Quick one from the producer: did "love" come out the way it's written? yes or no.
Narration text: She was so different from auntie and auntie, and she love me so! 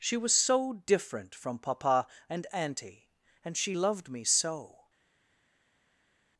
no